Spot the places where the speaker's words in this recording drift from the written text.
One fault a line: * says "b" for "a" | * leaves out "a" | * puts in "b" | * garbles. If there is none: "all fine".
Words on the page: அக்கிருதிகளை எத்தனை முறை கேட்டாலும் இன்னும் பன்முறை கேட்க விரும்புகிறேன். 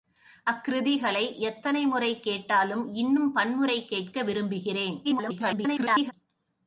* garbles